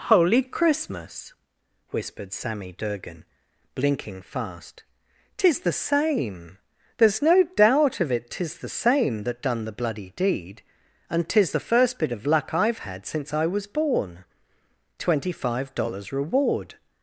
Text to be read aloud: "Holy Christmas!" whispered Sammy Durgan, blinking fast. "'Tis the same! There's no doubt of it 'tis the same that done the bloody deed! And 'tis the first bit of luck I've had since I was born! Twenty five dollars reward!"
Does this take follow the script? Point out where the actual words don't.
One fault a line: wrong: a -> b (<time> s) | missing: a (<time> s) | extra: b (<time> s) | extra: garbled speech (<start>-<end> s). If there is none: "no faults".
no faults